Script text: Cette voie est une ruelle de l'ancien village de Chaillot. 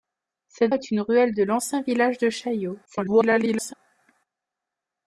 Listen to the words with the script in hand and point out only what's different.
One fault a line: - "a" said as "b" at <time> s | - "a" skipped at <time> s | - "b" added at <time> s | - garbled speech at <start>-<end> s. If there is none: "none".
- "voie" skipped at 0.7 s
- garbled speech at 2.8-3.7 s